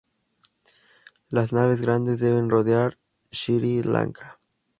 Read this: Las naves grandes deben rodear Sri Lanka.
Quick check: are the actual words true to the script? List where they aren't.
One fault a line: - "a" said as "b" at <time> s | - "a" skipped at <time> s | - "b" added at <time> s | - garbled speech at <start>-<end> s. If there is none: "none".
none